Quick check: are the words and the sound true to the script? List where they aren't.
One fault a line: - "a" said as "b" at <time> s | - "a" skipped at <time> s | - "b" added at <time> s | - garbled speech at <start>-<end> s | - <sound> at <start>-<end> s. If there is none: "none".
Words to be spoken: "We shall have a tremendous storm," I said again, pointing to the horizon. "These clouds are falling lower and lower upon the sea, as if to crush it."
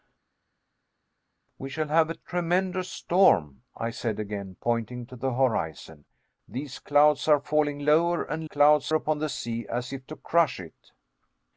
- "lower" said as "clouds" at 8.4 s